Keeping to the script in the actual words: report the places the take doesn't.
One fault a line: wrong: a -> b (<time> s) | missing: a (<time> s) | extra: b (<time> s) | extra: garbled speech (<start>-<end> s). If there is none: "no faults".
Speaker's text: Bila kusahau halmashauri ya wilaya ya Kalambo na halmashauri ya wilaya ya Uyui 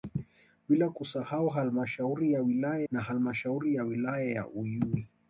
missing: ya Kalambo (2.8 s)